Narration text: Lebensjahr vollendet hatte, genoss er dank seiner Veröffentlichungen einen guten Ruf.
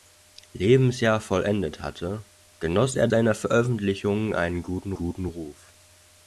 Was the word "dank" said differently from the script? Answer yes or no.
yes